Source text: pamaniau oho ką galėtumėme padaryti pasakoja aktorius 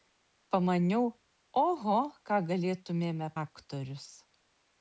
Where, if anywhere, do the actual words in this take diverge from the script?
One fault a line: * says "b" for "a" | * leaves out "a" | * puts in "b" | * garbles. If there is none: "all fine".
* leaves out "padaryti pasakoja"